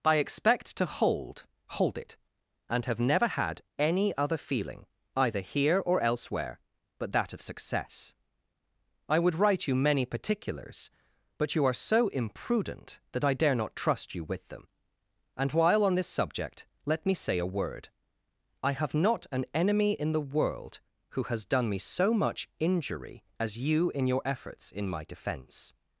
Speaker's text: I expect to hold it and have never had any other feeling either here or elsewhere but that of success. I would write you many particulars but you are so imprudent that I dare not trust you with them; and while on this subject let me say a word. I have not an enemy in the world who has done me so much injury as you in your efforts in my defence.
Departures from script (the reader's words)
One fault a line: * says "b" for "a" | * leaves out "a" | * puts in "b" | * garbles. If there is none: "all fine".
* puts in "hold"